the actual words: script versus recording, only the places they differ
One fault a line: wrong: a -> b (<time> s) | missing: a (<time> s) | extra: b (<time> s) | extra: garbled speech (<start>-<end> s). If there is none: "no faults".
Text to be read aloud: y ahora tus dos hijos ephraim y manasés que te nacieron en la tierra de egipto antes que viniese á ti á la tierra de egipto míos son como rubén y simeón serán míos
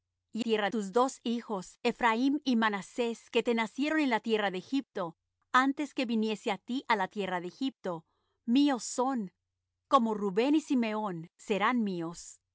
wrong: ahora -> tierra (0.4 s)